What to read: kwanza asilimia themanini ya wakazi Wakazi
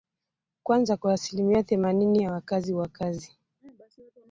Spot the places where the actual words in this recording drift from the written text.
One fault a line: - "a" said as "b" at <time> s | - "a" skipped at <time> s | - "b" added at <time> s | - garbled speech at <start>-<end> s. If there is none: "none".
- "kwa" added at 1.0 s